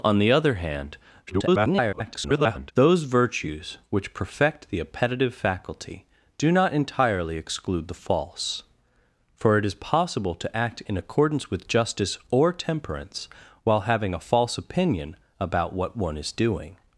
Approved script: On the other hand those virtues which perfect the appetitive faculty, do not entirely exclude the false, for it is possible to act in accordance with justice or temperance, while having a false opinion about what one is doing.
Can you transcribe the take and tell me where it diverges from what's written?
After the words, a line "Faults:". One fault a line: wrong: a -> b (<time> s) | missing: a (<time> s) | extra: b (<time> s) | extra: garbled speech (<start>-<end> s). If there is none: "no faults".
On the other hand [garbled] those virtues which perfect the appetitive faculty, do not entirely exclude the false, for it is possible to act in accordance with justice or temperance, while having a false opinion about what one is doing.
Faults:
extra: garbled speech (1.3-2.7 s)